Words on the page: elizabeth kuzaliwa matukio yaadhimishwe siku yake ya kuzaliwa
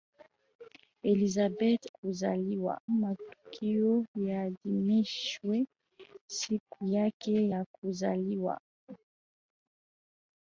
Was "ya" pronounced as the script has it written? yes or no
yes